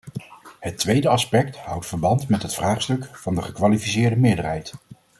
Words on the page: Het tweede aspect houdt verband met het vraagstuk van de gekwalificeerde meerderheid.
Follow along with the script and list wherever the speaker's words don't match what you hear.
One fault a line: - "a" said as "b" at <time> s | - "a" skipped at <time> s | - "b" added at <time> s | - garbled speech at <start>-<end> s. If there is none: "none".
none